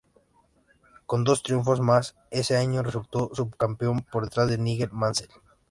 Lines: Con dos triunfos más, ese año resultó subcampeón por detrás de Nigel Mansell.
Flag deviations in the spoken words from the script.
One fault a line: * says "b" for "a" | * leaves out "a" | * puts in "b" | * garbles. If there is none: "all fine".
all fine